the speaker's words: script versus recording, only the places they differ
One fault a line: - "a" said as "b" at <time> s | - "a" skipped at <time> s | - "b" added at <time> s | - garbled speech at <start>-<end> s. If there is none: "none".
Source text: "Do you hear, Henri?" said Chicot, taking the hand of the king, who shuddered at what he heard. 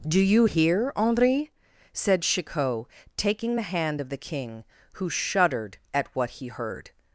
none